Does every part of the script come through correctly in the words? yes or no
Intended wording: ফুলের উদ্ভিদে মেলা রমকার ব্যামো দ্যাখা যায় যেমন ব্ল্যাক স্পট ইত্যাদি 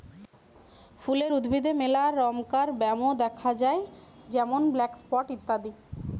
yes